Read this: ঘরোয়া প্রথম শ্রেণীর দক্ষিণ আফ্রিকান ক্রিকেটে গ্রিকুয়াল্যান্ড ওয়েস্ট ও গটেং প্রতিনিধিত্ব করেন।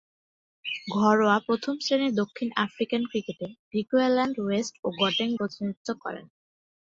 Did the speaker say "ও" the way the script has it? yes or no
yes